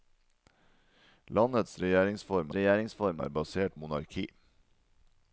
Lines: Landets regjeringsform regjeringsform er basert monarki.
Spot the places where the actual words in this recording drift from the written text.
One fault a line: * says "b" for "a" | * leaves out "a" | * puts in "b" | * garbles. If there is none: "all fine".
all fine